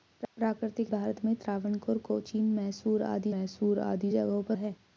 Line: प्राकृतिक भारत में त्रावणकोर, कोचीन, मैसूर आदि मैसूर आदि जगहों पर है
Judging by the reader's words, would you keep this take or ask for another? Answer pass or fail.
pass